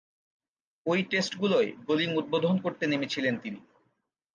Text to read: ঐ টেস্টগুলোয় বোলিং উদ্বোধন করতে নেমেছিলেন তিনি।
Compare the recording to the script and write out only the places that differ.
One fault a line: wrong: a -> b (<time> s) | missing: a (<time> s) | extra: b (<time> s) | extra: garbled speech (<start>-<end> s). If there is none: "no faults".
no faults